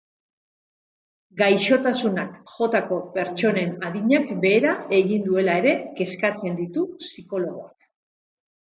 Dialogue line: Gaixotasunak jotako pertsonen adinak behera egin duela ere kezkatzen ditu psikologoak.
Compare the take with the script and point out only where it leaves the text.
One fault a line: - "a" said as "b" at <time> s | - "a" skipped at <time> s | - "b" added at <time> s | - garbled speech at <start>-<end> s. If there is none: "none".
none